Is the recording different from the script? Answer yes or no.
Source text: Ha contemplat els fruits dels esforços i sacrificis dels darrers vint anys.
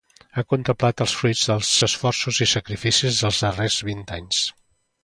no